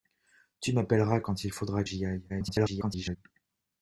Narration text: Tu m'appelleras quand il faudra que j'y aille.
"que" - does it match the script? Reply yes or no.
no